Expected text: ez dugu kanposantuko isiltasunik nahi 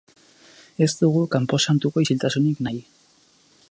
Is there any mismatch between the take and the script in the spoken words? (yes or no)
no